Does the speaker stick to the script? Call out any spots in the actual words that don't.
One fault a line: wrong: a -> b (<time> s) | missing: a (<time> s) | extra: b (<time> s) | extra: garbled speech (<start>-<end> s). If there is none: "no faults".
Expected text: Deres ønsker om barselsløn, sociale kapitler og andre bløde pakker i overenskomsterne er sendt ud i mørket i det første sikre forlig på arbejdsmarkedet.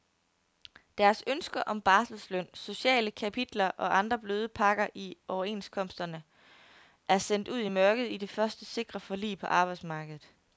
no faults